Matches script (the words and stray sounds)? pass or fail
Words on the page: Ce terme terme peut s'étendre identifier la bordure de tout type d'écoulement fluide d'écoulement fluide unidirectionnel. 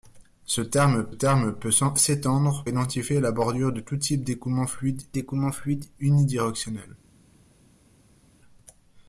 pass